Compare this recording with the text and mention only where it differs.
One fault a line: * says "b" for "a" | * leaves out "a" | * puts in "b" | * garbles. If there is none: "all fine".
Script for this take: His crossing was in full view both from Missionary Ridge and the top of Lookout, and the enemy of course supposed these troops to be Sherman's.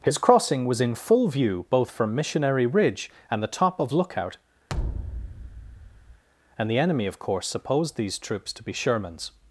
all fine